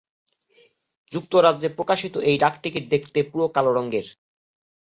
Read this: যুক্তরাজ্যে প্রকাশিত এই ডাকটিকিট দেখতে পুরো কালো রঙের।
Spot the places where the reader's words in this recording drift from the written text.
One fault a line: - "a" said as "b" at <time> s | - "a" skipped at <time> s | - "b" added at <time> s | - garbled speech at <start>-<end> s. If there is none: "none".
none